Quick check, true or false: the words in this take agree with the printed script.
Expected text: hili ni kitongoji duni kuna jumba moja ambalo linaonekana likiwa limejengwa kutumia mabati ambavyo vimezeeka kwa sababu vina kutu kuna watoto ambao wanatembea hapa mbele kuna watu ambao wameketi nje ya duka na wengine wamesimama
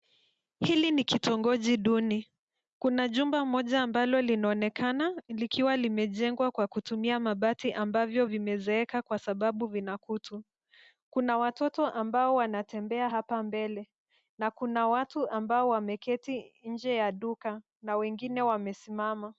false